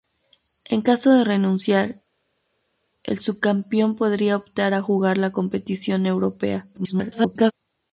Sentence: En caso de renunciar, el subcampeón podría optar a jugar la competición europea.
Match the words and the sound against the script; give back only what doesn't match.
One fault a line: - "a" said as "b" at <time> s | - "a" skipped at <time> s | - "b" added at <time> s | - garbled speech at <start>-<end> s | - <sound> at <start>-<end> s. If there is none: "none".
- garbled speech at 6.7-7.5 s